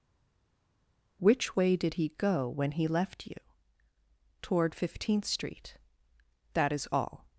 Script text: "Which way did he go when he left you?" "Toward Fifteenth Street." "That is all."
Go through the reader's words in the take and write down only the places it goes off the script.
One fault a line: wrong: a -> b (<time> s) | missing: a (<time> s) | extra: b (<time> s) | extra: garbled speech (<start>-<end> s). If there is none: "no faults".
no faults